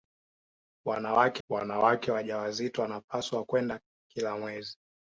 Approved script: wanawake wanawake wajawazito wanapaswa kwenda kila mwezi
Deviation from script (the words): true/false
false